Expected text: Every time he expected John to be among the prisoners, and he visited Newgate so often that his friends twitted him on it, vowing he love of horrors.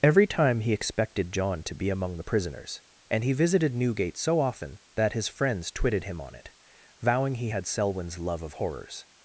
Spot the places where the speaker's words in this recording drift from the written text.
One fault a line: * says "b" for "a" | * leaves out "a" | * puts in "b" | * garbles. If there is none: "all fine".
* puts in "had Selwyn's"